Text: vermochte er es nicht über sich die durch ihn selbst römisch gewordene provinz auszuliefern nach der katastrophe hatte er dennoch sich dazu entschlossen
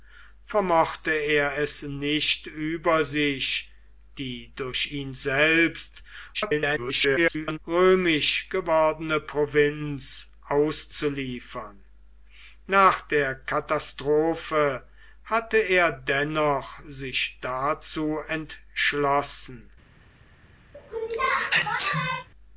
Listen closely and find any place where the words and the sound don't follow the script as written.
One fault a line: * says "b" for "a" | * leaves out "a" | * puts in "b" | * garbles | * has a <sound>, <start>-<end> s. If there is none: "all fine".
* garbles
* has a sneeze, 20.7-22.3 s